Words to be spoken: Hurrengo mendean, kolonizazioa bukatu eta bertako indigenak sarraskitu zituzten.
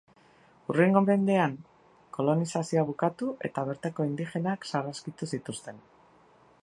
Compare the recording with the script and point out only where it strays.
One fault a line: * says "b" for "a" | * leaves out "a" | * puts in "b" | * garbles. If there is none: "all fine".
all fine